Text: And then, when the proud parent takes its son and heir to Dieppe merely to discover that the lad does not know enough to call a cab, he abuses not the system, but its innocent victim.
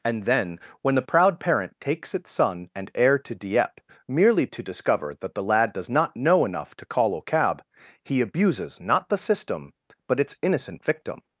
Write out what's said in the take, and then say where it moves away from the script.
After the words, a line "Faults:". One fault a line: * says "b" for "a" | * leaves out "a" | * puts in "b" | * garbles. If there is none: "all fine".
And then, when the proud parent takes its son and heir to Dieppe merely to discover that the lad does not know enough to call a cab, he abuses not the system, but its innocent victim.
Faults:
all fine